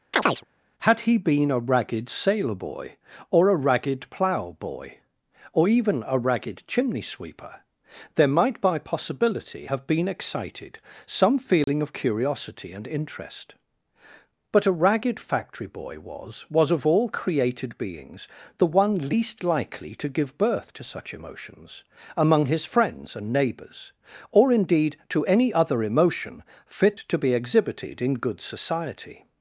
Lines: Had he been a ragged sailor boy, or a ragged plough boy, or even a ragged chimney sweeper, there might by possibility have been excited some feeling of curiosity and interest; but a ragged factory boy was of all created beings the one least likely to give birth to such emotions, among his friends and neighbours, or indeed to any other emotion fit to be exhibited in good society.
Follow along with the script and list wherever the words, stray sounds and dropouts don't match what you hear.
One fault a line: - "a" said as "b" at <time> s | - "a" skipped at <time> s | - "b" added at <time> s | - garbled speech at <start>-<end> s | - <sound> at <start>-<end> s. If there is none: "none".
- chirp at 0.1-0.4 s
- dropout at 11.6-11.7 s
- "was" added at 16.5 s